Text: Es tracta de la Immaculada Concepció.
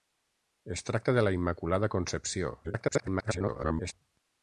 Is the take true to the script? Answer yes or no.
no